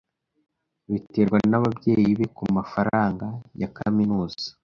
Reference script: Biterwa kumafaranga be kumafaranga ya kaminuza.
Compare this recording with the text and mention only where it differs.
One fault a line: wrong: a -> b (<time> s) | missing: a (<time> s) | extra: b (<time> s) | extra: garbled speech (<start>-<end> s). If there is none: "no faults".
wrong: kumafaranga -> nababyeyi (1.5 s)